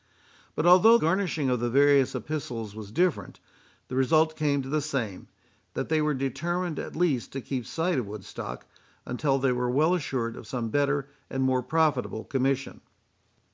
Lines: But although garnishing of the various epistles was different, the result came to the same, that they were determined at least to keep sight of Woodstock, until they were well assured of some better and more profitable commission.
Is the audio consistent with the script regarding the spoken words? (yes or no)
yes